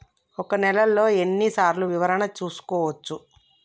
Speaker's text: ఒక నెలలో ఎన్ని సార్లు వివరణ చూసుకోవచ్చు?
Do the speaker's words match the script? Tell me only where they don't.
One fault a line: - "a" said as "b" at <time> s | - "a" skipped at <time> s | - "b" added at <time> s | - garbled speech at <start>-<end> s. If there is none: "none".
none